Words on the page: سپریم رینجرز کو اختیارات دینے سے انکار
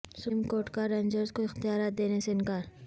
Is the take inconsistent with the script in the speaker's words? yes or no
yes